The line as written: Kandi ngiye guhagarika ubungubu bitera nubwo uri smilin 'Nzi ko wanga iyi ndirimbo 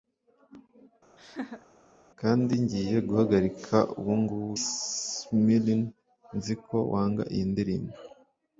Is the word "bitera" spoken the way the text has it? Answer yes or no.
no